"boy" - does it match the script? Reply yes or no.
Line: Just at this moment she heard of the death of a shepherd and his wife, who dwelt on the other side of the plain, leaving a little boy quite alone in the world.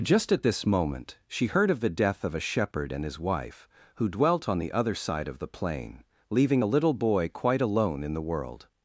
yes